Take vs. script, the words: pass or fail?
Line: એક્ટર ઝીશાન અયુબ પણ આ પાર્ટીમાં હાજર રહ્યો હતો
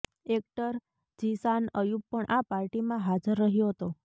pass